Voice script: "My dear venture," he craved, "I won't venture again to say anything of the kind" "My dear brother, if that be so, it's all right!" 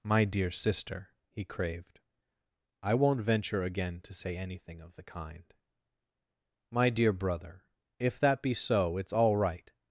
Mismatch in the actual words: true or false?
true